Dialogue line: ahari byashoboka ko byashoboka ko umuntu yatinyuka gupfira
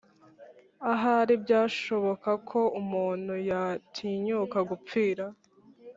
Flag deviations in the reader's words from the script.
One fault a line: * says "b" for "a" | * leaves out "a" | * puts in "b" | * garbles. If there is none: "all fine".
* leaves out "byashoboka ko"